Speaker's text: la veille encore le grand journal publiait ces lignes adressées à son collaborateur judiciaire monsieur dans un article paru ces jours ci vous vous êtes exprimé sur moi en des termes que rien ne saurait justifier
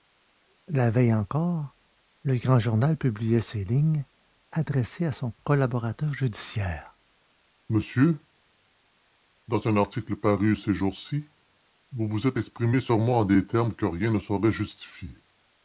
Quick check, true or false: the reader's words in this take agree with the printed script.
true